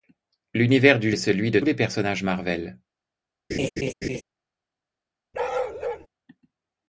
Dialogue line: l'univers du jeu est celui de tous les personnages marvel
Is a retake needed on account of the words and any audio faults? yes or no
yes